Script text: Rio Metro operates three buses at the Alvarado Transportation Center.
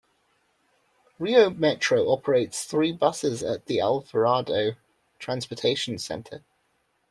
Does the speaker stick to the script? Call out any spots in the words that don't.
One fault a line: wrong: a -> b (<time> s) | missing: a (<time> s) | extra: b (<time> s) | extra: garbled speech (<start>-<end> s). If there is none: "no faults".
no faults